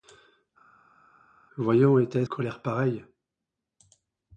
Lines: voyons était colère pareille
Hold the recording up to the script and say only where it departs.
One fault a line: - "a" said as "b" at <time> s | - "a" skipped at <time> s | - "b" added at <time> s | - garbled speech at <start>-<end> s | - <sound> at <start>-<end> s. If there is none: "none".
none